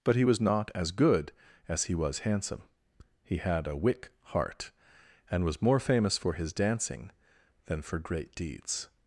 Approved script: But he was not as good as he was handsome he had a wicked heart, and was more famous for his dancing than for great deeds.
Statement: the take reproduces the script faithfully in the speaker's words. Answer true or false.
false